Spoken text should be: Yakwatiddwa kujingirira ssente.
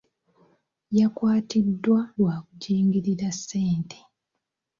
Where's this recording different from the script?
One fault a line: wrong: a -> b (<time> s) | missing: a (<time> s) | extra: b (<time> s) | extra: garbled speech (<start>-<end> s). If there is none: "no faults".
extra: lwa (2.2 s)